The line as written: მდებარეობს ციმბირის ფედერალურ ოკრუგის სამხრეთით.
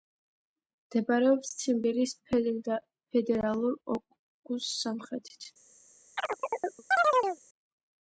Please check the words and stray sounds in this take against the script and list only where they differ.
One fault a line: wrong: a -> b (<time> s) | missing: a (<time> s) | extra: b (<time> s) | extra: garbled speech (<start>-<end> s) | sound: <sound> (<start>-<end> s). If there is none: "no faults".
sound: chirp (6.2-7.4 s)